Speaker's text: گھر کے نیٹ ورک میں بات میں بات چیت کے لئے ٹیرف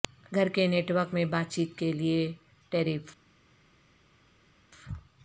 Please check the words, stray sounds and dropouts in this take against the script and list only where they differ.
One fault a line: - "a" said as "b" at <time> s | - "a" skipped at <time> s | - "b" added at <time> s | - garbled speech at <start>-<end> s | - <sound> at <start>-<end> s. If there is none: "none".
- "میں بات" skipped at 1.5 s